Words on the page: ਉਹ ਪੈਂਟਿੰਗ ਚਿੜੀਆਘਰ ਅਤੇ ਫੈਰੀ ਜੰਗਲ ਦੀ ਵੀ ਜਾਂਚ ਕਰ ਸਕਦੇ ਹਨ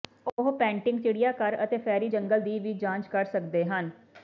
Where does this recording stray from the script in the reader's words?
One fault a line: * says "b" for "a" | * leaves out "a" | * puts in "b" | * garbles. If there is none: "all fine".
all fine